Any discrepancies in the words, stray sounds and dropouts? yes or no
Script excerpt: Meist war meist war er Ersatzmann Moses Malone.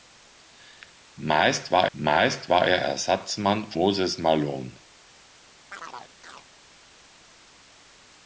yes